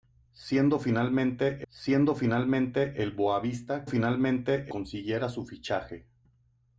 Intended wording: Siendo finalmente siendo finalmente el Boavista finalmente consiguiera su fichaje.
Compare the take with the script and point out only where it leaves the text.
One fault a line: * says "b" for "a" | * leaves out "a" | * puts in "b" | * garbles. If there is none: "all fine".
all fine